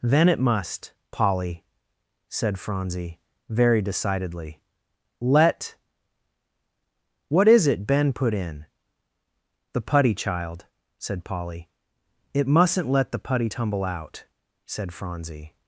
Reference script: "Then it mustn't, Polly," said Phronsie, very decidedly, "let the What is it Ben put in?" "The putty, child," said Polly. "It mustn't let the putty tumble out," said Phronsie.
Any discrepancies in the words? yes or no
yes